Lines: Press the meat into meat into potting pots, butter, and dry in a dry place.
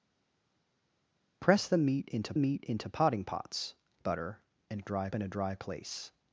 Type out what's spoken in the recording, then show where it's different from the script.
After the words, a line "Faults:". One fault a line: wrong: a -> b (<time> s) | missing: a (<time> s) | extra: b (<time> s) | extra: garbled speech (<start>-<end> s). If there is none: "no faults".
Press the meat into meat into potting pots, butter, and dry in a dry place.
Faults:
no faults